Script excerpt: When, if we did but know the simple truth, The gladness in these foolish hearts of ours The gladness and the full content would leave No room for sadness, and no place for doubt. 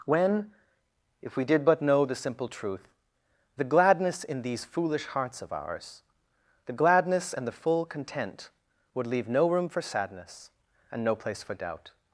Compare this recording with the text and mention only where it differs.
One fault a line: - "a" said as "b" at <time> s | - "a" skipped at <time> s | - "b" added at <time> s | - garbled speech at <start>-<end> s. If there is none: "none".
none